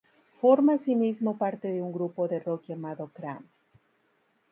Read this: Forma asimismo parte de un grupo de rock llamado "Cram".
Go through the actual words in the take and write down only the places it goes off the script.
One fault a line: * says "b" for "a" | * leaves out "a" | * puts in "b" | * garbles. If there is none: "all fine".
all fine